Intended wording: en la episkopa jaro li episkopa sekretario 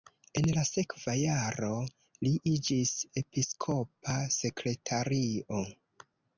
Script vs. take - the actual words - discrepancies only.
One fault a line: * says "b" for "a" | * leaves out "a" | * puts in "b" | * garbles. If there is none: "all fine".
* says "sekva" for "episkopa"
* puts in "iĝis"